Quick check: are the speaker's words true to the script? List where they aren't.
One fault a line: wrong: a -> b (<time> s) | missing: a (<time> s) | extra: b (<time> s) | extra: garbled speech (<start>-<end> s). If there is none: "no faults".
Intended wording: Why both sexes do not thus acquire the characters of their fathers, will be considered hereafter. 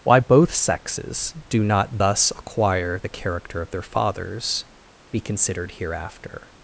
wrong: characters -> character (3.1 s)
missing: will (4.6 s)